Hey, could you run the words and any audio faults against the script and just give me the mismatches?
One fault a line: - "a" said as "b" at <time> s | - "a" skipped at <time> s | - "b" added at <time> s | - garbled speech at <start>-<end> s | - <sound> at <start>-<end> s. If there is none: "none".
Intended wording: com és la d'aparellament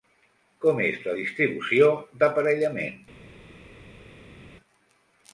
- "distribució" added at 1.2 s